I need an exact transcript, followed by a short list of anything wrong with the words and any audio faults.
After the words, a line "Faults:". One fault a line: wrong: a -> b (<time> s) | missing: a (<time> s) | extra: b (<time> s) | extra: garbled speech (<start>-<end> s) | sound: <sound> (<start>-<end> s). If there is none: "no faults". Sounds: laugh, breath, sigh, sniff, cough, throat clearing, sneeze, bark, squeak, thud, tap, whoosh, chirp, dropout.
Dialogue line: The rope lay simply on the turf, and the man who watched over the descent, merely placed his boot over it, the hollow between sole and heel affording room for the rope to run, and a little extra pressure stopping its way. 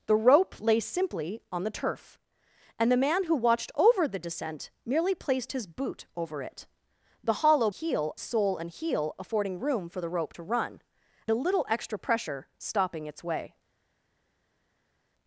The rope lay simply on the turf, and the man who watched over the descent, merely placed his boot over it, the hollow heel sole and heel affording room for the rope to run, a little extra pressure stopping its way.
Faults:
wrong: between -> heel (7.7 s)
missing: and (10.8 s)